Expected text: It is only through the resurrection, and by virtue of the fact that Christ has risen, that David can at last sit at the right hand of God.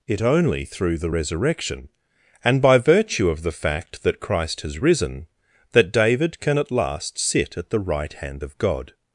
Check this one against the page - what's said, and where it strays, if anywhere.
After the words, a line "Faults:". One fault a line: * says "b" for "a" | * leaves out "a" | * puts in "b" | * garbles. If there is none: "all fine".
It only through the resurrection, and by virtue of the fact that Christ has risen, that David can at last sit at the right hand of God.
Faults:
* leaves out "is"